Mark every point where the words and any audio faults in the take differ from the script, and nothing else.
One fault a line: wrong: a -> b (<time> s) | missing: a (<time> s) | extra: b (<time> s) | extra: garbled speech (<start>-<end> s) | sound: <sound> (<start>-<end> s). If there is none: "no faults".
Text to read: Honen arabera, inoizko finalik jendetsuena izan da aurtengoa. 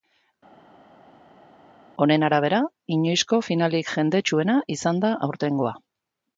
no faults